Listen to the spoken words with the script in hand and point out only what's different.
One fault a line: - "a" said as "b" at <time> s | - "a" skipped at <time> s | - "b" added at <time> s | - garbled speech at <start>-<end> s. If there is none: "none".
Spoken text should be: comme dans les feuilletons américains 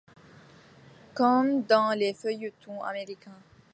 none